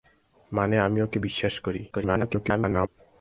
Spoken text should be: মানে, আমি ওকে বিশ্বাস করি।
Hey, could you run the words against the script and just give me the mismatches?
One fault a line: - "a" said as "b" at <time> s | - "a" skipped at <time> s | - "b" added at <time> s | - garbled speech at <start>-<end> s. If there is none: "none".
- garbled speech at 1.9-2.9 s